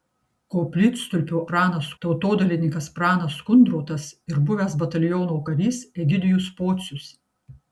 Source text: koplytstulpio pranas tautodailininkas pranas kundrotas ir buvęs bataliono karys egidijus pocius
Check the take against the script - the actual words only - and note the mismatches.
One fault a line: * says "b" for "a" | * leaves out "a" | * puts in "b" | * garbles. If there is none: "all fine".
all fine